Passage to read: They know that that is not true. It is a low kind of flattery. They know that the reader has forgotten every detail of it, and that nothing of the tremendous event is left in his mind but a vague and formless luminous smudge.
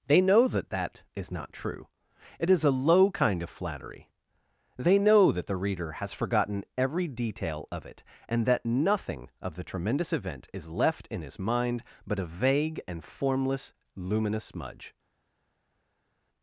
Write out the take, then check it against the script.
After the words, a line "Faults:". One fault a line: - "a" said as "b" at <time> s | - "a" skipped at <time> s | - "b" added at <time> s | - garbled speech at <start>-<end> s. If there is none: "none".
They know that that is not true. It is a low kind of flattery. They know that the reader has forgotten every detail of it, and that nothing of the tremendous event is left in his mind but a vague and formless luminous smudge.
Faults:
none